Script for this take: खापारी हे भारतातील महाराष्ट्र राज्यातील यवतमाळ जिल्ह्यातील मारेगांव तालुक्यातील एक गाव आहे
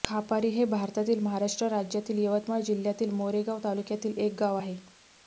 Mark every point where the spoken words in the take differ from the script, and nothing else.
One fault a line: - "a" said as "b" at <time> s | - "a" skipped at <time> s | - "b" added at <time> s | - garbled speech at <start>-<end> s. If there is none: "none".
none